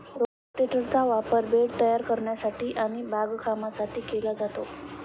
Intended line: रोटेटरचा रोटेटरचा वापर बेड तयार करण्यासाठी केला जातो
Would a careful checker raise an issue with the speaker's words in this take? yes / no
yes